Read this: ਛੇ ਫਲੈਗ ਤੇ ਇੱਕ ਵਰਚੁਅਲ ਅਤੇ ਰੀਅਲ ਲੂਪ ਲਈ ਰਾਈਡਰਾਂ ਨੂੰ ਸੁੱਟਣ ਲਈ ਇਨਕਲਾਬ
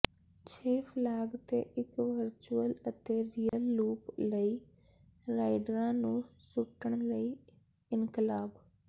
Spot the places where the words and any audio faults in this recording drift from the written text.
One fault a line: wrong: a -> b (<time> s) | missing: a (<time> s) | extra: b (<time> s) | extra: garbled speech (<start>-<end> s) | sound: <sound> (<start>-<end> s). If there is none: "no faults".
sound: dropout (3.5-3.5 s)